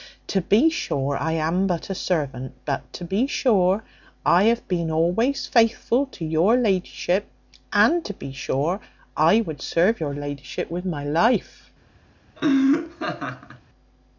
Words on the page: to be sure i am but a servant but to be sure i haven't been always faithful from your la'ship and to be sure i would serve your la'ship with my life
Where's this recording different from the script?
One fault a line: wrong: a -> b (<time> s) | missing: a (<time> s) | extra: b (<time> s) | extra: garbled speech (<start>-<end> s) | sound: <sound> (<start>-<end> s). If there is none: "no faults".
wrong: haven't -> have (4.5 s)
wrong: from -> to (6.1 s)
sound: laugh (12.4-13.6 s)